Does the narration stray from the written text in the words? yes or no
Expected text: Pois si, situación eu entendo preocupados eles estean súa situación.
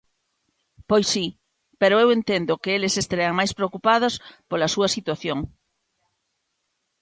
yes